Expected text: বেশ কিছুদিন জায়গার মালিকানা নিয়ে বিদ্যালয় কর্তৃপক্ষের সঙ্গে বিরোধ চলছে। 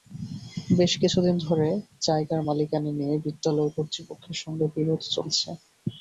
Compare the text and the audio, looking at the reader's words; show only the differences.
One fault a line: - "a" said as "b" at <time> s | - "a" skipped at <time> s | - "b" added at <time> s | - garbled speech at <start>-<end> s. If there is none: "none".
- "ধরে" added at 1.4 s